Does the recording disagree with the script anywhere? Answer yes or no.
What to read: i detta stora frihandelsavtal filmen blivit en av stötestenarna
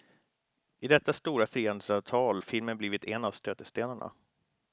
no